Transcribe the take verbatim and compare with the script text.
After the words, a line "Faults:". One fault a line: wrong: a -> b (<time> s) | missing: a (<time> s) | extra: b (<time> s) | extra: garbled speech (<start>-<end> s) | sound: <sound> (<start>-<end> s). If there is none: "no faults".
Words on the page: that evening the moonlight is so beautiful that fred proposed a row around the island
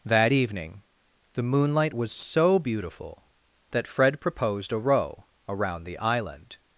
that evening the moonlight was so beautiful that fred proposed a row around the island
Faults:
wrong: is -> was (1.9 s)